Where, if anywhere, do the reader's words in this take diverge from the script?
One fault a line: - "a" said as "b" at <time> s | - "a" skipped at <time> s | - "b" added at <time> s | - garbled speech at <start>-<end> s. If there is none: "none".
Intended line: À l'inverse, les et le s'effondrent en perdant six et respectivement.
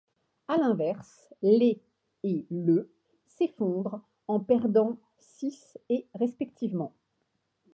none